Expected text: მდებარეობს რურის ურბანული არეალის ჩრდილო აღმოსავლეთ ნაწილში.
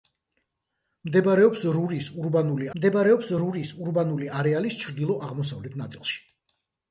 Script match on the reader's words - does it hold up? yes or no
no